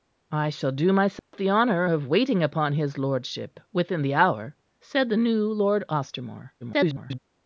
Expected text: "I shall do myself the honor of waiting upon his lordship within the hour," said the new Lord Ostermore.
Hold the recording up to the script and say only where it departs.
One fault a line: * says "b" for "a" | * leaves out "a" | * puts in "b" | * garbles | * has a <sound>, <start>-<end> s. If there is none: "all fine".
* has a dropout, 1.2-1.3 s
* garbles